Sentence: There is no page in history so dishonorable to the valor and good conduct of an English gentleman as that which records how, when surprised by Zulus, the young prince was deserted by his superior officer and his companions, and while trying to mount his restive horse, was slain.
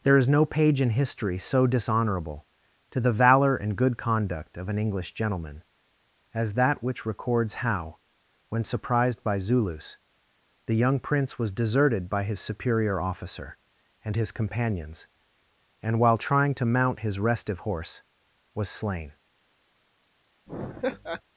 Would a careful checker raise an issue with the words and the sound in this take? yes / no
yes